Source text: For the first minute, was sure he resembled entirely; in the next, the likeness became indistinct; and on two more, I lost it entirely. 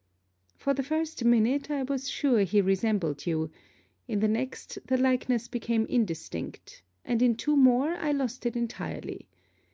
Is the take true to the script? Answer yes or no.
no